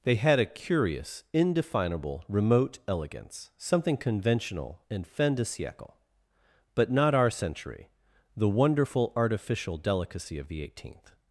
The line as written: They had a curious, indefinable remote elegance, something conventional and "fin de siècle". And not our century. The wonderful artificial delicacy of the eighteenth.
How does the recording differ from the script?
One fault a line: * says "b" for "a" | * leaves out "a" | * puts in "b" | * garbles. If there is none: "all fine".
* says "But" for "And"